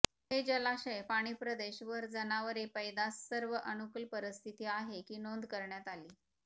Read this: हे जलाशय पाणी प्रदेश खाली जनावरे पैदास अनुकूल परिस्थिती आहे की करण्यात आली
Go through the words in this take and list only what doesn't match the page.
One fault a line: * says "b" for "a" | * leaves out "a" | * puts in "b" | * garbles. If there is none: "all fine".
* says "वर" for "खाली"
* puts in "सर्व"
* puts in "नोंद"